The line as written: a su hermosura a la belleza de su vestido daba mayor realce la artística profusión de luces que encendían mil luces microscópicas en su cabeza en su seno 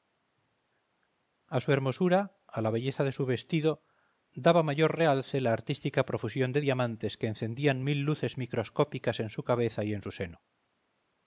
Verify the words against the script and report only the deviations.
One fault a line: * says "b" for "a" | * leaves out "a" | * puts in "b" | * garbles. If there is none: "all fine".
* says "diamantes" for "luces"
* puts in "y"